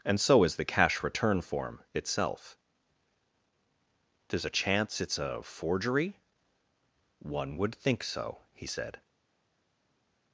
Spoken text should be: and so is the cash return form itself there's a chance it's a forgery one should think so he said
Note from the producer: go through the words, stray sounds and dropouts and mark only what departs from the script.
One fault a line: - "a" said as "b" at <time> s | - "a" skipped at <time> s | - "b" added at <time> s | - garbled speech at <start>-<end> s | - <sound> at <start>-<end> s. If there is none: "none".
- "should" said as "would" at 7.6 s